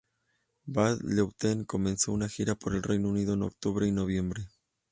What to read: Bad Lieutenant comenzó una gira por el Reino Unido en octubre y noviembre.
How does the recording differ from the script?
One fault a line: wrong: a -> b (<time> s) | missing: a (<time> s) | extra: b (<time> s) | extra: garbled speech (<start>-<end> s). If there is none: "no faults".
no faults